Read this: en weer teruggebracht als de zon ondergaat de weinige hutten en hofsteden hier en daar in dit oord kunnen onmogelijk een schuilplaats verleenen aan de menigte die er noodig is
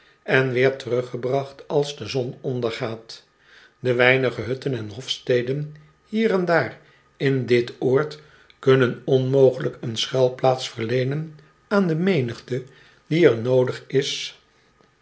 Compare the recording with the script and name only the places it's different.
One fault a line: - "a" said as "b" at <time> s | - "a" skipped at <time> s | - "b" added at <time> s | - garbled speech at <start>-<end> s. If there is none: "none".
none